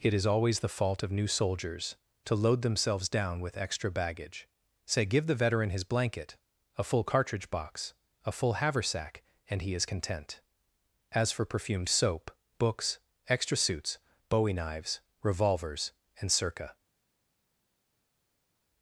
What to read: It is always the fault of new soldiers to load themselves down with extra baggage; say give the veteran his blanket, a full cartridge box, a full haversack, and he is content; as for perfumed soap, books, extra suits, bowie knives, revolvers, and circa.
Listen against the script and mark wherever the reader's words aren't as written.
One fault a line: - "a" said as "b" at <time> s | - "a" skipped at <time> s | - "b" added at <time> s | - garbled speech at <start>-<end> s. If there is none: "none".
none